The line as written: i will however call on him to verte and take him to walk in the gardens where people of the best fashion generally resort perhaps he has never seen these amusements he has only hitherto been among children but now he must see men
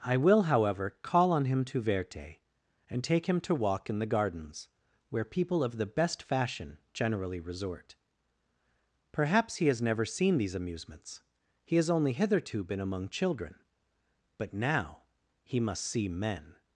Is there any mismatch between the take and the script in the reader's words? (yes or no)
no